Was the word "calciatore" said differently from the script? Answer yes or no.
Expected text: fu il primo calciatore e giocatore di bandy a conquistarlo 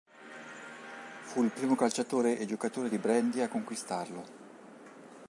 no